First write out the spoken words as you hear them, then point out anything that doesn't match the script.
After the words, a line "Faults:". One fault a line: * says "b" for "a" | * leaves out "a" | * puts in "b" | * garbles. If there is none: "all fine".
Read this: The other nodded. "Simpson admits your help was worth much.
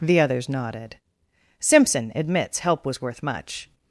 The others nodded. "Simpson admits help was worth much.
Faults:
* says "others" for "other"
* leaves out "your"